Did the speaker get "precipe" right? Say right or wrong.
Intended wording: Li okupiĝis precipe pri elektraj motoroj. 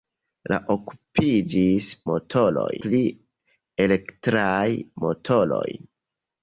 wrong